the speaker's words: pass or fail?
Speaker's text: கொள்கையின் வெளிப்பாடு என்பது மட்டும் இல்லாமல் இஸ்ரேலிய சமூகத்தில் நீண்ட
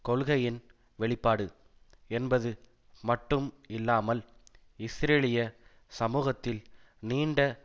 pass